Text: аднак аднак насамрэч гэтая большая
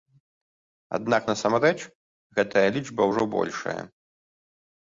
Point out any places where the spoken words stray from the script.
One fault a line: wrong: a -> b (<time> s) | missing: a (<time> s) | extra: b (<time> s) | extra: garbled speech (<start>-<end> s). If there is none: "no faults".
missing: аднак (1.3 s)
extra: лічба ўжо (2.8 s)